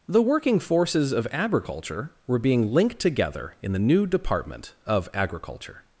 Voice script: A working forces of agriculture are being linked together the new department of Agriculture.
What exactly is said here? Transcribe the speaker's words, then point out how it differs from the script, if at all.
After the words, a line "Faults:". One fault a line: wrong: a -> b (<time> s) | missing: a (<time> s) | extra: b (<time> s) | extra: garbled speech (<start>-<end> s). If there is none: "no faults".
The working forces of agriculture were being linked together in the new department of Agriculture.
Faults:
wrong: A -> The (0.1 s)
wrong: are -> were (2.2 s)
extra: in (3.6 s)